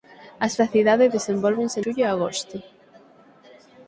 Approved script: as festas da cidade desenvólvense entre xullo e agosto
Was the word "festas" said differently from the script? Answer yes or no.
yes